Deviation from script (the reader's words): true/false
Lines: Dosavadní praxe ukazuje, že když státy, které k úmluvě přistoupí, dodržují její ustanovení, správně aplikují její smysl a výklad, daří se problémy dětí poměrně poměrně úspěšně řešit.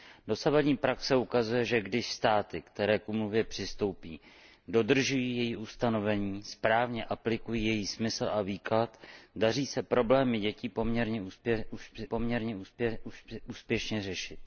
false